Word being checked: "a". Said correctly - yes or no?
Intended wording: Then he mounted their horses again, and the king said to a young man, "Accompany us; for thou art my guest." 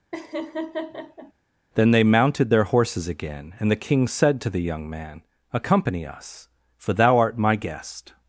no